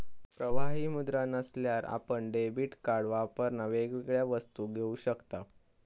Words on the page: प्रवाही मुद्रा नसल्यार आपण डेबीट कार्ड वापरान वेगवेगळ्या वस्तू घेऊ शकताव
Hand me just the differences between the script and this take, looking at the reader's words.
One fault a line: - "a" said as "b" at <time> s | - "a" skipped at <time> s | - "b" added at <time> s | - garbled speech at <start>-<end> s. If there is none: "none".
none